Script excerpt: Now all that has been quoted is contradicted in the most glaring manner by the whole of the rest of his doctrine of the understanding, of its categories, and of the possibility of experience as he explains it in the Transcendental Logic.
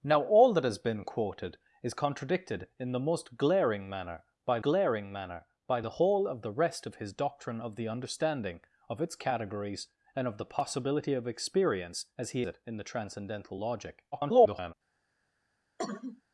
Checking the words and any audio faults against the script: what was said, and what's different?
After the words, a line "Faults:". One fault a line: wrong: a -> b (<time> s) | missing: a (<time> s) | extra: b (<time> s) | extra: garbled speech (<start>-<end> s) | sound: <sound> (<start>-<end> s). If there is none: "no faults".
Now all that has been quoted is contradicted in the most glaring manner by glaring manner by the whole of the rest of his doctrine of the understanding, of its categories, and of the possibility of experience as he it in the Transcendental Logic. [garbled]
Faults:
extra: glaring manner by (4.6 s)
missing: explains (12.4 s)
extra: garbled speech (14.1-14.7 s)
sound: cough (15.8-16.2 s)